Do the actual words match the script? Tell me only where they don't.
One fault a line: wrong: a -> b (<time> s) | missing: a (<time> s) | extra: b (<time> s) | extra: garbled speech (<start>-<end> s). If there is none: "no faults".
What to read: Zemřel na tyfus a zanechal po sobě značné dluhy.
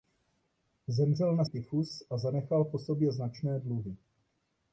no faults